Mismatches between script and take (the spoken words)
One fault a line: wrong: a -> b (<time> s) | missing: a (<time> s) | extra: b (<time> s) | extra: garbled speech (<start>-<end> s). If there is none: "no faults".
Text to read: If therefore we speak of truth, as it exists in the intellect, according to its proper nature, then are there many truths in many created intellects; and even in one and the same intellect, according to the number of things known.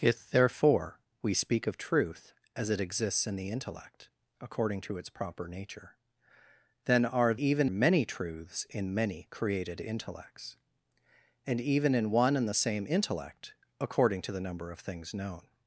wrong: there -> even (7.3 s)